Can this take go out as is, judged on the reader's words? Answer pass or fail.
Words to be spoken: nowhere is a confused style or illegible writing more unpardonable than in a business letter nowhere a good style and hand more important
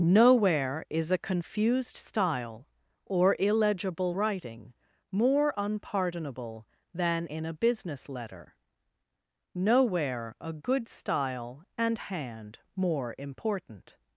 pass